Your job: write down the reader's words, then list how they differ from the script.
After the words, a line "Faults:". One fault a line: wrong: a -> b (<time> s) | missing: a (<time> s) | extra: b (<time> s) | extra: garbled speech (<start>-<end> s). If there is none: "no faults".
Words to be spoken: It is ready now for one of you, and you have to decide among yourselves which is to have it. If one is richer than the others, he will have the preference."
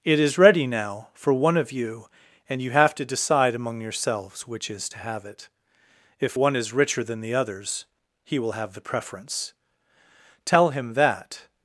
It is ready now for one of you, and you have to decide among yourselves which is to have it. If one is richer than the others, he will have the preference." "Tell him that
Faults:
extra: Tell him that (10.4 s)